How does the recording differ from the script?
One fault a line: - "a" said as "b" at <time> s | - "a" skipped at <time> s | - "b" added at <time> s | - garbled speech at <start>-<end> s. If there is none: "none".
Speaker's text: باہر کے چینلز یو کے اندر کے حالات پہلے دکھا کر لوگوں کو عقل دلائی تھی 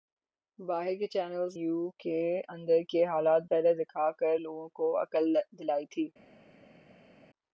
none